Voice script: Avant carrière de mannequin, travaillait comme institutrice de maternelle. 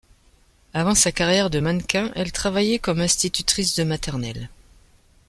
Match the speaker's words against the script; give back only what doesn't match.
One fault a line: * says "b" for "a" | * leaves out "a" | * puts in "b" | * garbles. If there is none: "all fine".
* puts in "sa"
* puts in "elle"